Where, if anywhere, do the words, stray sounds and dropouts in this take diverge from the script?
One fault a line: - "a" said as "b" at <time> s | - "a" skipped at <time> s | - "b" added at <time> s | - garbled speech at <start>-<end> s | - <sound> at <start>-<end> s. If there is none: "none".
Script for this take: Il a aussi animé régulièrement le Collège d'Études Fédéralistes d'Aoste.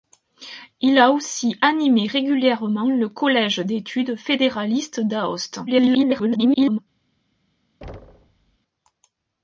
- garbled speech at 5.7-6.8 s
- thud at 7.8-8.6 s